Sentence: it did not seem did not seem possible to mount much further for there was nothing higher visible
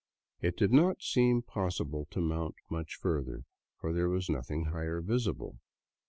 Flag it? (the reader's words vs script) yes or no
yes